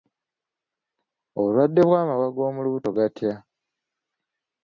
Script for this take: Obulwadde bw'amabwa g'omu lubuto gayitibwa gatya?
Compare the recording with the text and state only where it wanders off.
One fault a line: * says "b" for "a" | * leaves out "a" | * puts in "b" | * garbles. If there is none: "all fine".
* leaves out "gayitibwa"